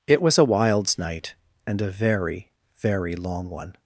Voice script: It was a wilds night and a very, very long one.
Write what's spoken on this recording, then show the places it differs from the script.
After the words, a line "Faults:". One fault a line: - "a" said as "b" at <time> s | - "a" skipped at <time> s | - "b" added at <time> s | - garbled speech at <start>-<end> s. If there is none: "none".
It was a wilds night and a very, very long one.
Faults:
none